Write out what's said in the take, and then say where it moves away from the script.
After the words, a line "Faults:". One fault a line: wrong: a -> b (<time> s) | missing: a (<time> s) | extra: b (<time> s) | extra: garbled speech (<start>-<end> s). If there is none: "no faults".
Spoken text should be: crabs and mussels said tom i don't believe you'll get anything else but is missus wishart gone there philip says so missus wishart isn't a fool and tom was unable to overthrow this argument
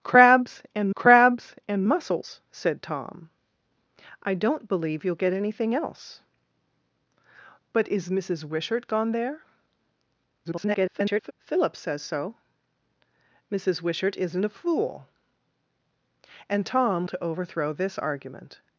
crabs and crabs and mussels said tom i don't believe you'll get anything else but is missus wishart gone there [garbled] philip says so missus wishart isn't a fool and tom to overthrow this argument
Faults:
extra: crabs and (0.9 s)
extra: garbled speech (10.4-11.3 s)
missing: was unable (17.1 s)